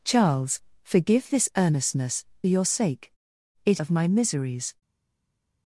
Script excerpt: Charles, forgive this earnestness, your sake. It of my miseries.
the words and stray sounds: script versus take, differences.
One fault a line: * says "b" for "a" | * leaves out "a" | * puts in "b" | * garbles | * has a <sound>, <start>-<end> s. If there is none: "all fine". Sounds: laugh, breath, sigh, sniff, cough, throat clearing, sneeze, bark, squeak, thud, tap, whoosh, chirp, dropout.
all fine